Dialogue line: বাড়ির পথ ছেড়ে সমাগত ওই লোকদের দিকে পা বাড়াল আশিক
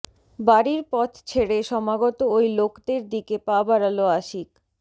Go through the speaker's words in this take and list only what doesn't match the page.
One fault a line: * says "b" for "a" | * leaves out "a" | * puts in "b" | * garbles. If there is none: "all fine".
all fine